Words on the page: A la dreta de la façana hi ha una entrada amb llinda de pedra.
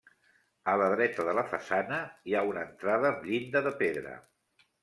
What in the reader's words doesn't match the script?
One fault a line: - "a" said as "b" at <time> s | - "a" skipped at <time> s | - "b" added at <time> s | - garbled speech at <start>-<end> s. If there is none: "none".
none